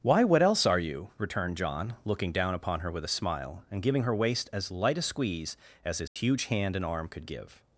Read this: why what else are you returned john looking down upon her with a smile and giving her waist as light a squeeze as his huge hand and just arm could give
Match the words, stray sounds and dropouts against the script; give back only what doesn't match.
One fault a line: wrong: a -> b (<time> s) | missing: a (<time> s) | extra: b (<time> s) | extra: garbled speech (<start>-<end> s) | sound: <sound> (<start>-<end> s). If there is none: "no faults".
sound: dropout (6.1-6.2 s)
missing: just (6.8 s)